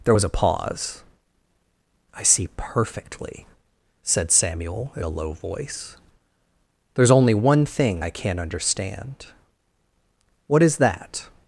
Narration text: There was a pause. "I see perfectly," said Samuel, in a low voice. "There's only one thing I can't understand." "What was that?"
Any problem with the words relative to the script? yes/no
yes